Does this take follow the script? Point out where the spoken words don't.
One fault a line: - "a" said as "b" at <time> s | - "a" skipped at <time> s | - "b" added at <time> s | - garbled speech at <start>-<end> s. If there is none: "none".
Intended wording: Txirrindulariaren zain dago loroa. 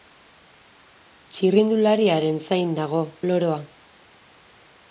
none